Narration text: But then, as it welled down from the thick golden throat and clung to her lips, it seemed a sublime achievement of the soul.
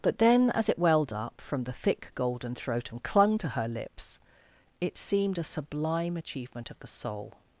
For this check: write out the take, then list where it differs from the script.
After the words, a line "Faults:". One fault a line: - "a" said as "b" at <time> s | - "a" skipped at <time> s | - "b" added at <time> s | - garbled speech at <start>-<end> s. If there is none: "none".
But then, as it welled up from the thick golden throat and clung to her lips, it seemed a sublime achievement of the soul.
Faults:
- "down" said as "up" at 1.1 s